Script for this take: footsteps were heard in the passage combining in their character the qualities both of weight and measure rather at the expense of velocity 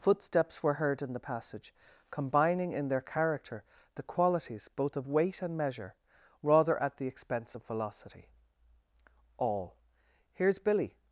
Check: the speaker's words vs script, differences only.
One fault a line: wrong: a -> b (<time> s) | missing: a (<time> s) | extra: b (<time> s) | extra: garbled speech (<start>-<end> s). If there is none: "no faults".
extra: all here's billy (9.4 s)